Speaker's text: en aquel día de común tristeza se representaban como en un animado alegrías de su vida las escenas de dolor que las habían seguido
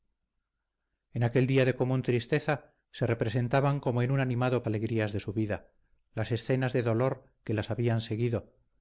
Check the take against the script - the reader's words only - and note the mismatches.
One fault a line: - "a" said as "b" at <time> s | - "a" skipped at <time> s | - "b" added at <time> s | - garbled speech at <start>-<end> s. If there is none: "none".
none